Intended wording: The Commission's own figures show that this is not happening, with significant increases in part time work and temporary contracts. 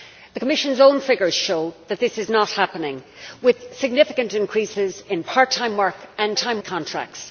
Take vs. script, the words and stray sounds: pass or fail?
fail